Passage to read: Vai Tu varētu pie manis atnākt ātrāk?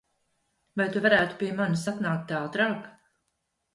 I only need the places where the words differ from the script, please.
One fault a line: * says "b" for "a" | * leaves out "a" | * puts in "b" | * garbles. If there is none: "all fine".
all fine